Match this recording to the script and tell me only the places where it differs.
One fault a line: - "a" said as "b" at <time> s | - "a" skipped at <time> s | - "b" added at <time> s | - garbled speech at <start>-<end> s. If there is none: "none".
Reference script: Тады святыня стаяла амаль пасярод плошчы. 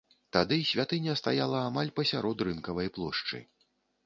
- "рынкавай" added at 2.5 s